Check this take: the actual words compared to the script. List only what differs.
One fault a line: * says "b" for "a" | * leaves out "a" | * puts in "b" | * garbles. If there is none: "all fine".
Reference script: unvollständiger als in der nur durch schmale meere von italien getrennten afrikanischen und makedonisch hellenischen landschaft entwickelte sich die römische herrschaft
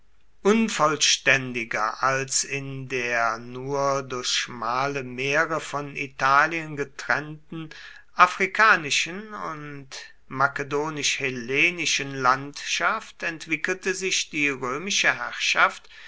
all fine